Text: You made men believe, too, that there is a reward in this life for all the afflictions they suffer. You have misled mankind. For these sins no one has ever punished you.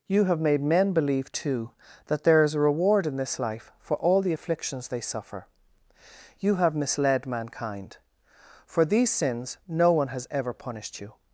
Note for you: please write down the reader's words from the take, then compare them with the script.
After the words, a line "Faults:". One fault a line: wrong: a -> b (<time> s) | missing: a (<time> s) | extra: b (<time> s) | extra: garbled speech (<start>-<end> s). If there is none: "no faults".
You have made men believe, too, that there is a reward in this life for all the afflictions they suffer. You have misled mankind. For these sins no one has ever punished you.
Faults:
extra: have (0.2 s)